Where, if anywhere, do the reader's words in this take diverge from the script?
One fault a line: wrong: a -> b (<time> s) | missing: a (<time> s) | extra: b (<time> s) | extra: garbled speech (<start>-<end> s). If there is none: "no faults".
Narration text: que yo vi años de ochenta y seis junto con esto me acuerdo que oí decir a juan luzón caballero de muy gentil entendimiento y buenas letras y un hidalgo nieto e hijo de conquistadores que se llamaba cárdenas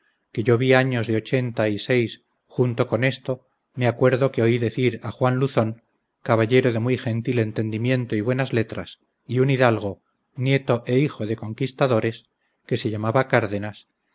no faults